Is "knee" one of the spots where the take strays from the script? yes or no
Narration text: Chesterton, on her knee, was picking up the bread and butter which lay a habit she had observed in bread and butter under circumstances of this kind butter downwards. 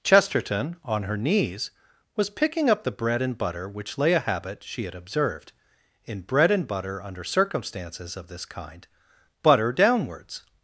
yes